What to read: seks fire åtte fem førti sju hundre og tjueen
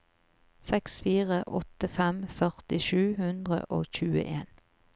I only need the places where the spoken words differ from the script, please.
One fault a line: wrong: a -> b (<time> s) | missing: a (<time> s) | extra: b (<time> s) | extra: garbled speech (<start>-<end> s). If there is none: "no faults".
no faults